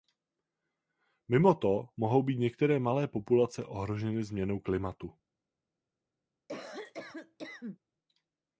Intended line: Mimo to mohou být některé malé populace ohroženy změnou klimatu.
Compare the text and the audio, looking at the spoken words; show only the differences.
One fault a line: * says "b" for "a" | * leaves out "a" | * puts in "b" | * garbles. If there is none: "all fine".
all fine